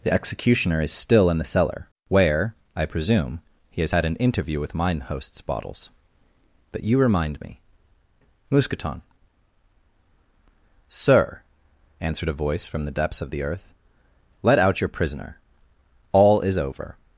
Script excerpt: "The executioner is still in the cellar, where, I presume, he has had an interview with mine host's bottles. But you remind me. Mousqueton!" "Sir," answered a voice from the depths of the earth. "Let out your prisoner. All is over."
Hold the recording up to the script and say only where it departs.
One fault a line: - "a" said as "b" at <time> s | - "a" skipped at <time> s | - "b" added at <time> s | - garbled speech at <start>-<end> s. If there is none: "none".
none